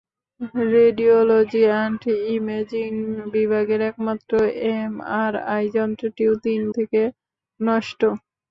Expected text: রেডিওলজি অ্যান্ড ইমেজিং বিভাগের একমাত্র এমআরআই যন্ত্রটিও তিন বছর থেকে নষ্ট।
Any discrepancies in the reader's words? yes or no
yes